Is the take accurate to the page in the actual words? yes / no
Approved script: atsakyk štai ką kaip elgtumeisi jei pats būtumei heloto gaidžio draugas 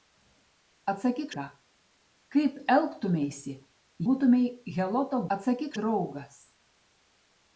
no